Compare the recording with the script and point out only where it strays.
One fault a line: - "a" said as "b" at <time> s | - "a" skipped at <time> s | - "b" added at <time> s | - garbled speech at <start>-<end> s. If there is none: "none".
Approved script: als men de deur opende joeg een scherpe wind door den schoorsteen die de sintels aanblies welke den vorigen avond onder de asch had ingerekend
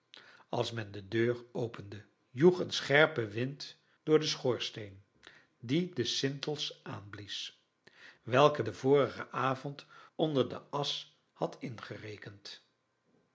none